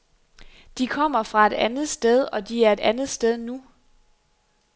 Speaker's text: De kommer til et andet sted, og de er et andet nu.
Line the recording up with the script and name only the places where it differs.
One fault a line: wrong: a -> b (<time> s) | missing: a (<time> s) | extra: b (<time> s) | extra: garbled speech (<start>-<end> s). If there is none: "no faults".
wrong: til -> fra (1.2 s)
extra: sted (3.1 s)